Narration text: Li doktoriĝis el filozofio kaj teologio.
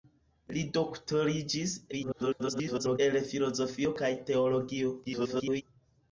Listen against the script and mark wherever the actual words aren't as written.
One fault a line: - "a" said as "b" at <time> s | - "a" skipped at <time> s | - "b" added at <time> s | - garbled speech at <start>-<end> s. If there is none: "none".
- garbled speech at 1.9-3.0 s
- garbled speech at 5.0-5.6 s